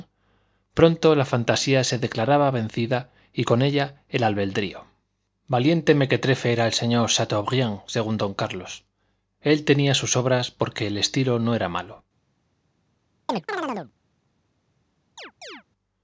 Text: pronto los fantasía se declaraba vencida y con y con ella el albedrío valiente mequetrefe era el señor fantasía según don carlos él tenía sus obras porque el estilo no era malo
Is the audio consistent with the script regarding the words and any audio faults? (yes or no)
no